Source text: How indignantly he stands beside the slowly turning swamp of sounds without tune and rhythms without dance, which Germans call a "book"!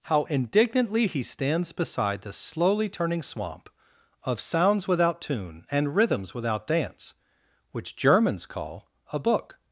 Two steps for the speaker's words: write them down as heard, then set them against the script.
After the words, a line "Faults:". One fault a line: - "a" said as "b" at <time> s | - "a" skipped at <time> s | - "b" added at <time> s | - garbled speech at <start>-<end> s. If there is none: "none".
How indignantly he stands beside the slowly turning swamp of sounds without tune and rhythms without dance, which Germans call a "book"!
Faults:
none